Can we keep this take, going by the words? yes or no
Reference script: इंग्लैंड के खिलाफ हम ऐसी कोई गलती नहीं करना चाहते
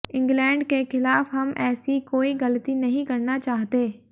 yes